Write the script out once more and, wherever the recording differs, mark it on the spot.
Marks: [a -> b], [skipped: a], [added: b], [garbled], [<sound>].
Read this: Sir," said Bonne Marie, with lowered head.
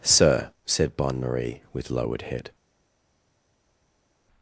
Sir," said Bonne Marie, with lowered head.